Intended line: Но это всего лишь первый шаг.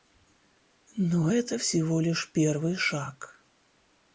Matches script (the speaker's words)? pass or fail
pass